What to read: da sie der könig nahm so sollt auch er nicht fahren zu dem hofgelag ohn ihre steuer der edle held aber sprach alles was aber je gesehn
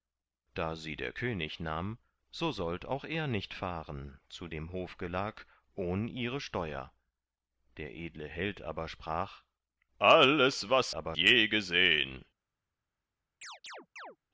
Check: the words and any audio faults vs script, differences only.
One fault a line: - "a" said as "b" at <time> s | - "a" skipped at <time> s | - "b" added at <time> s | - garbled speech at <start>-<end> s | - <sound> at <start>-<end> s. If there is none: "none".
- chirp at 13.4-14.2 s